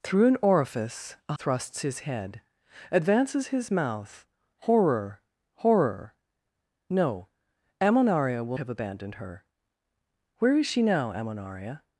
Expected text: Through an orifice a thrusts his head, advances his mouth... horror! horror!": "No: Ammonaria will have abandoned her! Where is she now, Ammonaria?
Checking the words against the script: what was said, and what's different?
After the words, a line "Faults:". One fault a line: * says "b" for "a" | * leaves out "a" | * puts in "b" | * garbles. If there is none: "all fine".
Through an orifice a thrusts his head, advances his mouth... horror! horror!": "No: Ammonaria will have abandoned her! Where is she now, Ammonaria?
Faults:
all fine